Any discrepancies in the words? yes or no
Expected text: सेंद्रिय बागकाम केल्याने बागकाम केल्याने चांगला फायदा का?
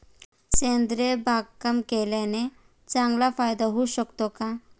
yes